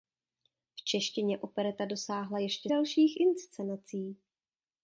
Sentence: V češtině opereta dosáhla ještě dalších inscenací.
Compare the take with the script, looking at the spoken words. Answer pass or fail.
pass